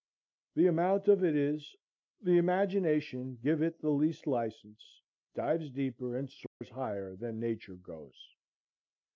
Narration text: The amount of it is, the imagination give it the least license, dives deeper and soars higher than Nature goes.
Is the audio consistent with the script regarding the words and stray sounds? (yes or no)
no